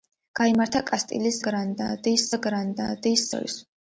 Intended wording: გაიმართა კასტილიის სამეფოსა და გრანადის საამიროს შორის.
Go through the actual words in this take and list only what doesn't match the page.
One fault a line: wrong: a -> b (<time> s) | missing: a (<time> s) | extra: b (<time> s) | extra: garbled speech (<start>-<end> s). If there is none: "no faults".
wrong: სამეფოსა -> გრანადის (1.5 s)
missing: საამიროს (3.3 s)